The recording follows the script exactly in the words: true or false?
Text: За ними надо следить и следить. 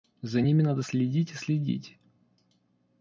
true